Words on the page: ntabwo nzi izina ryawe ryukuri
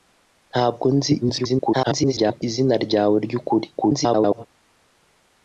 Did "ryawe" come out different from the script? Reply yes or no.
no